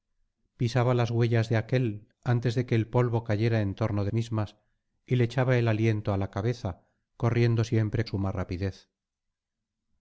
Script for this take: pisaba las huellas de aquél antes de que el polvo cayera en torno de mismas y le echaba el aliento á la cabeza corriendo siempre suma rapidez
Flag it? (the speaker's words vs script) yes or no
no